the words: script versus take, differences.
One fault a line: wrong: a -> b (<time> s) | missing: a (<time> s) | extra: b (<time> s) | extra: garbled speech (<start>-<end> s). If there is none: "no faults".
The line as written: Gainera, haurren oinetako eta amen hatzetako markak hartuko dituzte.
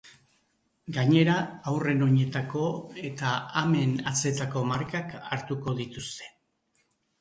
no faults